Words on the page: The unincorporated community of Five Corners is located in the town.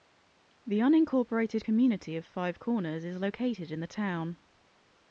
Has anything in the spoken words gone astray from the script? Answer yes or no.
no